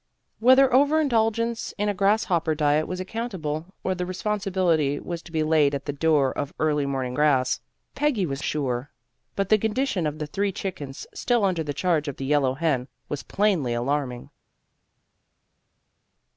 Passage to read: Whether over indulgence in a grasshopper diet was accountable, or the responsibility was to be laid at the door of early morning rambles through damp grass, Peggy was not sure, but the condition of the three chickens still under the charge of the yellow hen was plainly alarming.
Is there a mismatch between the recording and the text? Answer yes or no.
yes